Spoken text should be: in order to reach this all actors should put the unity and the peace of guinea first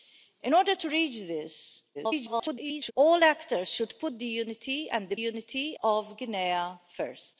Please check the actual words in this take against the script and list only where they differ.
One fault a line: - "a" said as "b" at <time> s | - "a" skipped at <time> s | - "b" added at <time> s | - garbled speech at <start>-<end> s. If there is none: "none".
- garbled speech at 1.9-2.9 s
- "peace" said as "unity" at 5.1 s